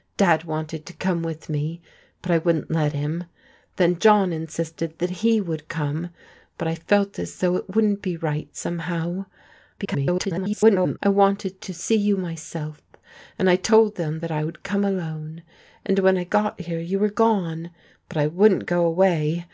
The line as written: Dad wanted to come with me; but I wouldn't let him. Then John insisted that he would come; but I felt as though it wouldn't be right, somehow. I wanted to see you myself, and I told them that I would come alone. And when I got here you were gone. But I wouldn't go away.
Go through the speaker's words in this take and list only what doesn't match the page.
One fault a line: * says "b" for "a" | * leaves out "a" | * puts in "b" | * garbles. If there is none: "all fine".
* garbles